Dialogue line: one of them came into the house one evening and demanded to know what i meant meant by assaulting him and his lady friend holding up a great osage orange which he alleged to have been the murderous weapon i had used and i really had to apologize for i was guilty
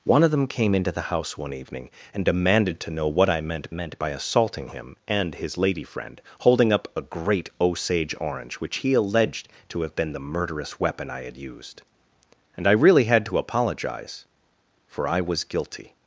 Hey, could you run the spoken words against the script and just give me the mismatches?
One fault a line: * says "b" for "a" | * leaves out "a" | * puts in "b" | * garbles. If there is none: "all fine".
all fine